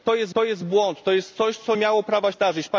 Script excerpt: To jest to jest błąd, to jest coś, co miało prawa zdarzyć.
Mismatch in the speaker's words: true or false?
false